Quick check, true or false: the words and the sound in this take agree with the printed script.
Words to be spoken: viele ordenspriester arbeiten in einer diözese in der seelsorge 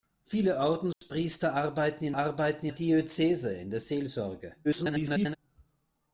false